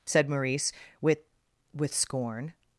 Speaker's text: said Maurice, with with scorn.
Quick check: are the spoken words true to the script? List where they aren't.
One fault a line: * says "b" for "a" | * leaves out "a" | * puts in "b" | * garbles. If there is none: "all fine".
all fine